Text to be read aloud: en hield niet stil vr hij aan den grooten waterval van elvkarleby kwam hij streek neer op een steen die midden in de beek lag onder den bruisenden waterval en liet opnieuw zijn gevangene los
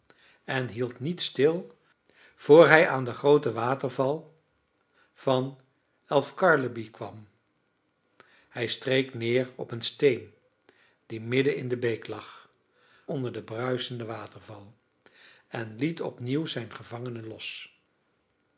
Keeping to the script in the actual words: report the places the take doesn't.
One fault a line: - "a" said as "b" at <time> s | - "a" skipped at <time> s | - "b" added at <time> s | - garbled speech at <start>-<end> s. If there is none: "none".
none